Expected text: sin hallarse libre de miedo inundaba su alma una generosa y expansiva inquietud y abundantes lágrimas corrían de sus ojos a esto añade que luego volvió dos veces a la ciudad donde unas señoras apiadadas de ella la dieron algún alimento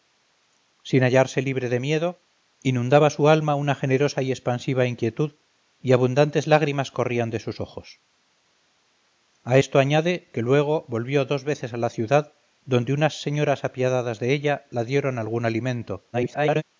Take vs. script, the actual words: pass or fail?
fail